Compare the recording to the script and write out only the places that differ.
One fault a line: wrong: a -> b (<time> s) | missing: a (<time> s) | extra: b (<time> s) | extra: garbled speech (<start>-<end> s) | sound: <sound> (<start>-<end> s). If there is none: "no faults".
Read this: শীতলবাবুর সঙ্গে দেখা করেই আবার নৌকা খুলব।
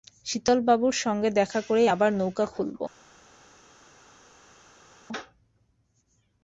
no faults